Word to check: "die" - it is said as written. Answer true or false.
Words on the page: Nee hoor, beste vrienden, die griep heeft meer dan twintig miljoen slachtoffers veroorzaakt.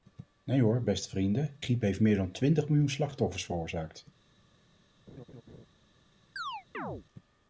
false